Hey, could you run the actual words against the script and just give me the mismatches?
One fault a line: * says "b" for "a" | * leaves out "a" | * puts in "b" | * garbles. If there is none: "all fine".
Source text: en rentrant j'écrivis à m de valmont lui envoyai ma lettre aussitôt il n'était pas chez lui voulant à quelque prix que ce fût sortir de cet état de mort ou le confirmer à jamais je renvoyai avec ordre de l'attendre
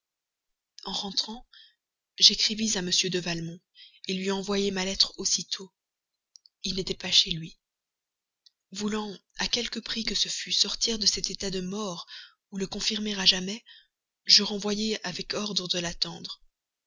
all fine